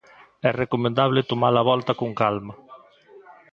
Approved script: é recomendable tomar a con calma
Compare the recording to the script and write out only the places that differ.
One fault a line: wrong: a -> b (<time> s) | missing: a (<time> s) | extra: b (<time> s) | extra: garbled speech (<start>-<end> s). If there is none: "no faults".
extra: volta (1.7 s)